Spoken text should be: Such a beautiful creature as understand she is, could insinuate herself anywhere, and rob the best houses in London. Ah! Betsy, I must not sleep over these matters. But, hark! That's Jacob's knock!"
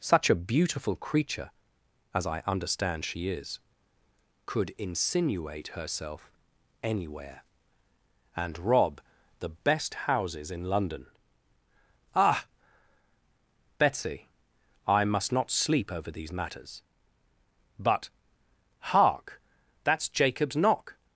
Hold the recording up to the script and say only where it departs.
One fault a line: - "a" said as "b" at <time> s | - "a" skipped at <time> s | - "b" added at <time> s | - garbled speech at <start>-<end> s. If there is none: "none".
- "I" added at 2.2 s